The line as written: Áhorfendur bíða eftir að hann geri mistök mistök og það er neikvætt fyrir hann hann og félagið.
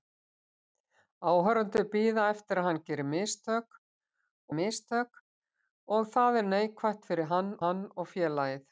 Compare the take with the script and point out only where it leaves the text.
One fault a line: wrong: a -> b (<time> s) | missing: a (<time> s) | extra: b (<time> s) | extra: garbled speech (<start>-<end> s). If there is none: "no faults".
no faults